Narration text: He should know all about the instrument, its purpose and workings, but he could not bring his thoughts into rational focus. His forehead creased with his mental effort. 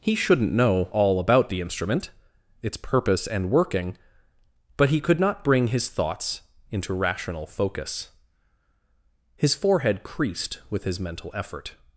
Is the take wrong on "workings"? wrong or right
wrong